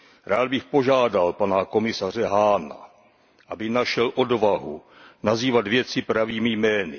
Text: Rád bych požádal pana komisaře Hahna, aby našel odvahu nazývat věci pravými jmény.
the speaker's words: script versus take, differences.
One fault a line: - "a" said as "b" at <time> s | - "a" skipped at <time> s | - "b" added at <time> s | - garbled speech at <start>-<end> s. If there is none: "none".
none